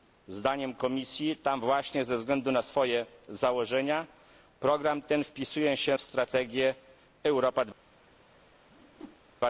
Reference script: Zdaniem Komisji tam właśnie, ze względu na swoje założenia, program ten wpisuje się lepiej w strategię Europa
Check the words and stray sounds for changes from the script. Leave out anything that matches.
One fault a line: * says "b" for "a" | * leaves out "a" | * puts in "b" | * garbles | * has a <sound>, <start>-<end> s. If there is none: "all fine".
* leaves out "lepiej"
* has a whoosh, 8.7-9.2 s